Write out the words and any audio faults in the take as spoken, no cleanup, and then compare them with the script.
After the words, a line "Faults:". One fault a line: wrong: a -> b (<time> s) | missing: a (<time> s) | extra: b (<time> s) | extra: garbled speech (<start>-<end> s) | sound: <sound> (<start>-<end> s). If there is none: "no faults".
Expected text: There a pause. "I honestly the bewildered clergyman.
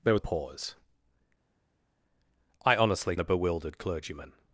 There a pause. "I honestly the bewildered clergyman.
Faults:
no faults